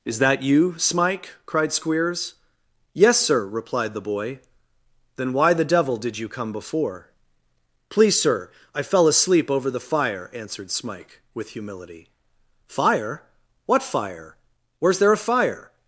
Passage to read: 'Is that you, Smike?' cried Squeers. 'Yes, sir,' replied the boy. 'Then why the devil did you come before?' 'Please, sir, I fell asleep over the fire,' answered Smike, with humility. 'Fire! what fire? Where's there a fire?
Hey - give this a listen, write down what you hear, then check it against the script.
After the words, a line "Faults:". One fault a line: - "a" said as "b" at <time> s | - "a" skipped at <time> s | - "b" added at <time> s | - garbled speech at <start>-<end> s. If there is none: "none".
'Is that you, Smike?' cried Squeers. 'Yes, sir,' replied the boy. 'Then why the devil did you come before?' 'Please, sir, I fell asleep over the fire,' answered Smike, with humility. 'Fire! what fire? Where's there a fire?
Faults:
none